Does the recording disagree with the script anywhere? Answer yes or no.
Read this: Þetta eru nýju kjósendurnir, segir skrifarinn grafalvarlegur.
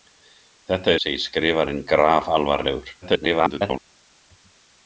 yes